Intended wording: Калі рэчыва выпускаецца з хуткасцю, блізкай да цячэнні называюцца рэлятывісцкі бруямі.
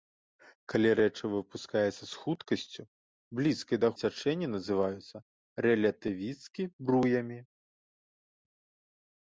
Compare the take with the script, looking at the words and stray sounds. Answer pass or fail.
pass